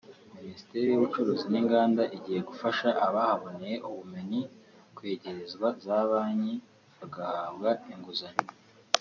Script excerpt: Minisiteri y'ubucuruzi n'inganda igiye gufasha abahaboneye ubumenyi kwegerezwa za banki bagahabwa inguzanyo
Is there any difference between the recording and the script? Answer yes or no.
no